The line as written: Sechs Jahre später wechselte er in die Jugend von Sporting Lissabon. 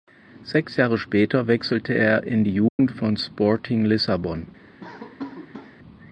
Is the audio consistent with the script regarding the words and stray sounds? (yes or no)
no